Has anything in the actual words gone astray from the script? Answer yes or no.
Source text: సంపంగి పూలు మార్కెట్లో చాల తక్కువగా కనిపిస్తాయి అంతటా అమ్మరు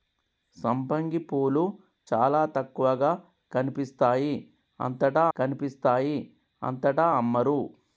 yes